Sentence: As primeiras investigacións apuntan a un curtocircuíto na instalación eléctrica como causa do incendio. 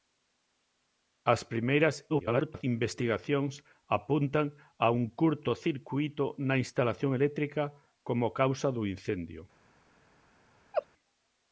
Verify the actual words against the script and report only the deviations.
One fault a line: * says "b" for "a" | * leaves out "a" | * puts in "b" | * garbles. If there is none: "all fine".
* garbles